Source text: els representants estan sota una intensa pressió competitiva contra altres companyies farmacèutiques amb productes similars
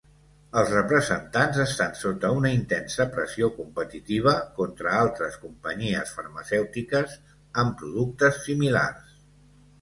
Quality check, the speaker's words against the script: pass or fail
pass